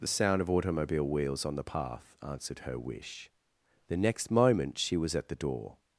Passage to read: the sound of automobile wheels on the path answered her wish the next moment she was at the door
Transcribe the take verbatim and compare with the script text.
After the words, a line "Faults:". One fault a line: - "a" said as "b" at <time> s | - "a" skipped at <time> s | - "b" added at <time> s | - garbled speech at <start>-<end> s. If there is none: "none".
the sound of automobile wheels on the path answered her wish the next moment she was at the door
Faults:
none